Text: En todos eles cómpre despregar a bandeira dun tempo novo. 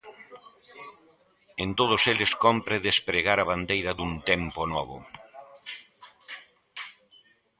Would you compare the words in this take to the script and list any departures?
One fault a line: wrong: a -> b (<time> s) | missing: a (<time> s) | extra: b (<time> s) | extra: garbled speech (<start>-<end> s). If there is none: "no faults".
no faults